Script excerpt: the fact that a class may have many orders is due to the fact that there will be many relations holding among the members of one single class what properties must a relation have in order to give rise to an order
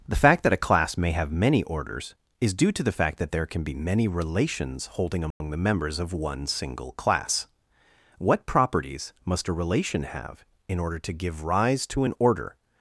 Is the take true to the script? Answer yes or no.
no